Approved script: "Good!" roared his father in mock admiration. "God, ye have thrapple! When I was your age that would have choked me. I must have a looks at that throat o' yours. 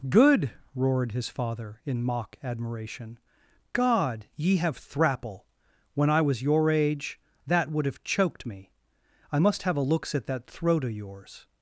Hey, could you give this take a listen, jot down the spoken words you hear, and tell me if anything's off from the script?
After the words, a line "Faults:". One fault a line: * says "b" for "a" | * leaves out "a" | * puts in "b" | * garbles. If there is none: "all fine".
"Good!" roared his father in mock admiration. "God, ye have thrapple! When I was your age that would have choked me. I must have a looks at that throat o' yours.
Faults:
all fine